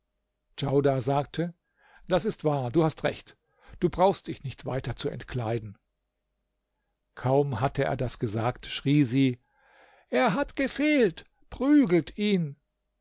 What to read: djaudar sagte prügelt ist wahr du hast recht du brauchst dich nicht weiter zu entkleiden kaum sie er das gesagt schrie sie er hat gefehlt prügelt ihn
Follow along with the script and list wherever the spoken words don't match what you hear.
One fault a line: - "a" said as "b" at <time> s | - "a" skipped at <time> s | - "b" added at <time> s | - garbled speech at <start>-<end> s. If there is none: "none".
- "prügelt" said as "das" at 2.1 s
- "sie" said as "hatte" at 7.6 s